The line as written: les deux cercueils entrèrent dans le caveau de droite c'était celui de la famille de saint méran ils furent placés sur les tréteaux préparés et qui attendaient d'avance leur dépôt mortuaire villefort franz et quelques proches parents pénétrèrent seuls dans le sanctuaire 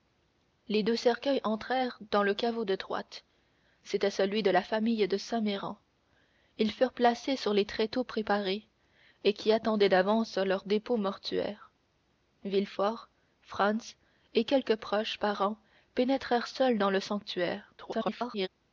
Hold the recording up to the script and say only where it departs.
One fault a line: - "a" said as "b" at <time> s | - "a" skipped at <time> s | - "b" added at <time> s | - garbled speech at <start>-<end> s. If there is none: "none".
- garbled speech at 17.8-18.5 s